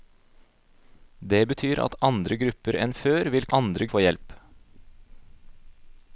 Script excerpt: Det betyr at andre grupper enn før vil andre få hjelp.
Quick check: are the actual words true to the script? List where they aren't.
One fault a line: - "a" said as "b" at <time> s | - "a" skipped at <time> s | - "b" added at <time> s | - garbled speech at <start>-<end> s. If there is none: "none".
none